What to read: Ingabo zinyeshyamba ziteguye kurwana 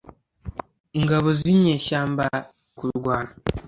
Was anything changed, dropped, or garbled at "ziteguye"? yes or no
yes